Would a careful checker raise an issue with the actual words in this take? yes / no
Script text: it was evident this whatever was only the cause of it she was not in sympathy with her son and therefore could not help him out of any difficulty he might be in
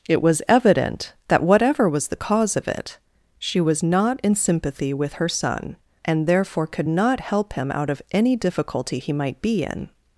yes